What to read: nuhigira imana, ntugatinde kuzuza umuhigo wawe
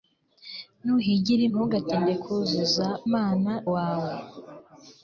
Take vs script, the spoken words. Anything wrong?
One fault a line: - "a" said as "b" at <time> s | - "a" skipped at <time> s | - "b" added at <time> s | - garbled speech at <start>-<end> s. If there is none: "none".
- "imana" skipped at 1.4 s
- "umuhigo" said as "imana" at 3.1 s